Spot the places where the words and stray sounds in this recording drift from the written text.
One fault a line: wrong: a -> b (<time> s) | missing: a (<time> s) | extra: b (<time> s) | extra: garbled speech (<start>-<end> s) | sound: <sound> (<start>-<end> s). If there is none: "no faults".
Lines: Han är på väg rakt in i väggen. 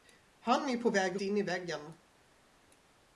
missing: rakt (1.2 s)